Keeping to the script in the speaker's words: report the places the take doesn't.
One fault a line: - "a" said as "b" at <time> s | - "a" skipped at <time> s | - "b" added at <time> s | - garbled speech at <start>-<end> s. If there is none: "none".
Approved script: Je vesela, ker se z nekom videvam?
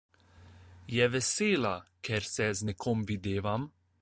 none